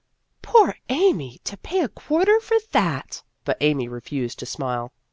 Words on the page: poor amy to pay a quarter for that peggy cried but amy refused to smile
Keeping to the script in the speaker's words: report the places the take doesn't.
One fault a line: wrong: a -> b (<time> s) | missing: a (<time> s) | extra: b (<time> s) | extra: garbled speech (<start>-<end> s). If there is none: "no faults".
missing: peggy cried (3.2 s)